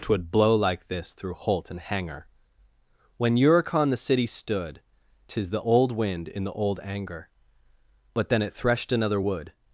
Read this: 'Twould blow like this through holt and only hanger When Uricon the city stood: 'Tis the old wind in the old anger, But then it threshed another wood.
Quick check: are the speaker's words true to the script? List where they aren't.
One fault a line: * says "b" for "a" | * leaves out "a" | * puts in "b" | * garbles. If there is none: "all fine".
* leaves out "only"